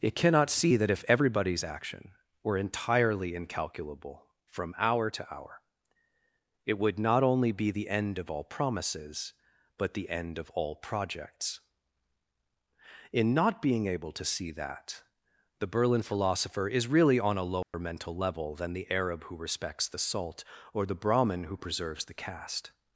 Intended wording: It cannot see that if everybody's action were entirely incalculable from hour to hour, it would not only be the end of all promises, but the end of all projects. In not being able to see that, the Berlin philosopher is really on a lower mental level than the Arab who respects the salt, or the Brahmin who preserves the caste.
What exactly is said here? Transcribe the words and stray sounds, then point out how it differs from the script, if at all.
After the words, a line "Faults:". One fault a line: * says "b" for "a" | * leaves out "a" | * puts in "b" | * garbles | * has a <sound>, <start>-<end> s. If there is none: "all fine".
It cannot see that if everybody's action were entirely incalculable from hour to hour, it would not only be the end of all promises, but the end of all projects. In not being able to see that, the Berlin philosopher is really on a lower mental level than the Arab who respects the salt, or the Brahmin who preserves the caste.
Faults:
* has a dropout, 17.6-17.7 s